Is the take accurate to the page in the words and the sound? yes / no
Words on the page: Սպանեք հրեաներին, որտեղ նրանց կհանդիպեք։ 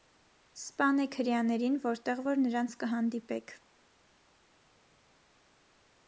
no